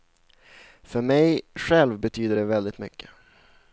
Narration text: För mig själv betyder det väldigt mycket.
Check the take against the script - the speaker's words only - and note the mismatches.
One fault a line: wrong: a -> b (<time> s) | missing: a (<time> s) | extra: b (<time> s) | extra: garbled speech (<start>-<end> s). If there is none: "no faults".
no faults